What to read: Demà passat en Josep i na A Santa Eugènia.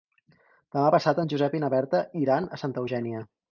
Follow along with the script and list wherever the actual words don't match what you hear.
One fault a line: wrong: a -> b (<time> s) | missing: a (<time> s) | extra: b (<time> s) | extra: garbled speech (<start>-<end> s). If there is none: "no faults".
extra: Berta iran (1.8 s)